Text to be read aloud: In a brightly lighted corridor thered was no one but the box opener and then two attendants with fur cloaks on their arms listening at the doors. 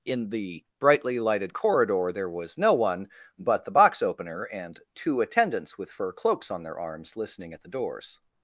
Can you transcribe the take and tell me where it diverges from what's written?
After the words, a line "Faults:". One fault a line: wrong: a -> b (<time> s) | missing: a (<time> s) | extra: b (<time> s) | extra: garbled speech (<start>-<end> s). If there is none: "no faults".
In the brightly lighted corridor there was no one but the box opener and two attendants with fur cloaks on their arms listening at the doors.
Faults:
wrong: a -> the (0.3 s)
wrong: thered -> there (2.1 s)
missing: then (4.8 s)